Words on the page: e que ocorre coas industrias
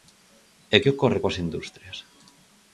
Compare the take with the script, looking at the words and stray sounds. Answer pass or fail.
pass